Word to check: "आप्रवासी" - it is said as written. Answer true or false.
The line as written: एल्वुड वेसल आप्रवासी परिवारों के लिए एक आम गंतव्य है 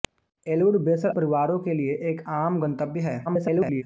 false